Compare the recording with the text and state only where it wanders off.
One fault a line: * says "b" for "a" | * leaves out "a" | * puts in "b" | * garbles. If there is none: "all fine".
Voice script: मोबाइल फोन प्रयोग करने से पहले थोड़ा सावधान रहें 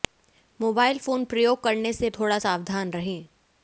* leaves out "पहले"